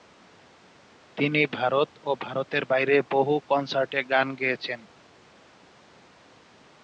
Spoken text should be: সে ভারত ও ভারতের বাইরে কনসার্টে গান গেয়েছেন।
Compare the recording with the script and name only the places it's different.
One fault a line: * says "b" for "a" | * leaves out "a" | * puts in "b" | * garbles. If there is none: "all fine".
* says "তিনি" for "সে"
* puts in "বহু"